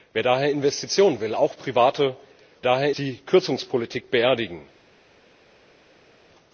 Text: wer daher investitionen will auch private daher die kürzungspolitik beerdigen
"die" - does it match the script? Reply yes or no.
yes